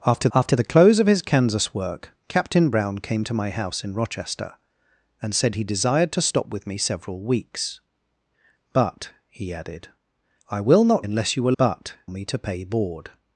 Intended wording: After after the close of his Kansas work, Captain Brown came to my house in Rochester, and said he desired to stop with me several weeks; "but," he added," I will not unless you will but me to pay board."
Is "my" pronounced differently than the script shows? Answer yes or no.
no